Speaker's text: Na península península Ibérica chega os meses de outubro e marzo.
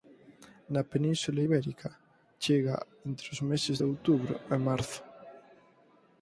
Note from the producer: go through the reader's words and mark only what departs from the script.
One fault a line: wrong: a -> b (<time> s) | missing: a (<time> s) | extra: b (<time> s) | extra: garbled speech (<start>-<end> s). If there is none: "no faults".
missing: península (1.4 s)
extra: entre (3.1 s)